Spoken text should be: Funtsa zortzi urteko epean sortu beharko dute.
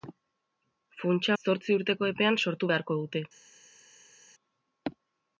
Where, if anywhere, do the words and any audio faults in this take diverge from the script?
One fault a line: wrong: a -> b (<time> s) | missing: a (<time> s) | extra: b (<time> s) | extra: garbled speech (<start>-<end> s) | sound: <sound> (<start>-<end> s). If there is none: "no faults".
no faults